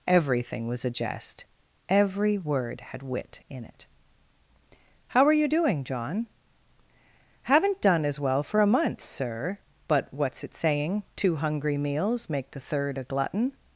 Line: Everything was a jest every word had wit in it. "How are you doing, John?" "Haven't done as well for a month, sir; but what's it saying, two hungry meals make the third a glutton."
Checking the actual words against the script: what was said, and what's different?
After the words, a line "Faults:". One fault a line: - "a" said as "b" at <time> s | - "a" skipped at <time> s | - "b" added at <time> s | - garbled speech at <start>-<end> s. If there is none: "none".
Everything was a jest every word had wit in it. "How are you doing, John?" "Haven't done as well for a month, sir; but what's it saying, two hungry meals make the third a glutton."
Faults:
none